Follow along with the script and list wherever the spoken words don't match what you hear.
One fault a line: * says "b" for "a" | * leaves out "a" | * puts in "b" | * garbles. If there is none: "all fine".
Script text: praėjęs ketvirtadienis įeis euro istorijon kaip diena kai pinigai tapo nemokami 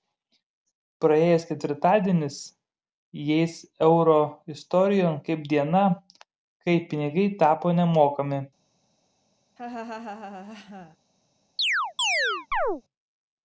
all fine